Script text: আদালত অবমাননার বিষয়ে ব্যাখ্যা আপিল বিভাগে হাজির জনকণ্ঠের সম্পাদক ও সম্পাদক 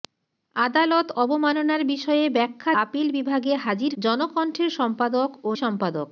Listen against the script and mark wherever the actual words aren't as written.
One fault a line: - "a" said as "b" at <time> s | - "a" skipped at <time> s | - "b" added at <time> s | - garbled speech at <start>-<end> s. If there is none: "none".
none